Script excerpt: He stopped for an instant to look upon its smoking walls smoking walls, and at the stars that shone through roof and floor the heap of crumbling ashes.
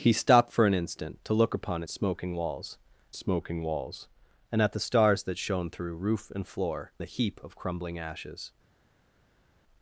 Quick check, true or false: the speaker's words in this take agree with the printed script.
true